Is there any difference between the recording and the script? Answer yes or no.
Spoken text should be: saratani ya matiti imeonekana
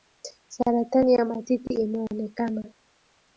no